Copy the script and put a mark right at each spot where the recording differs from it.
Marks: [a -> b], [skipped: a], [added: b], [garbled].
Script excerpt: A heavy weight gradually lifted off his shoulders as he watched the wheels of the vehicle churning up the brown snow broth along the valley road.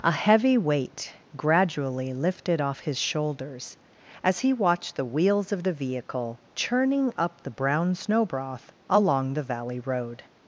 A heavy weight gradually lifted off his shoulders as he watched the wheels of the vehicle churning up the brown snow broth along the valley road.